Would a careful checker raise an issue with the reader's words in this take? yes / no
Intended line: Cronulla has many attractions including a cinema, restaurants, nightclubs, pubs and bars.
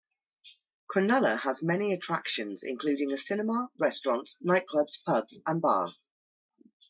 no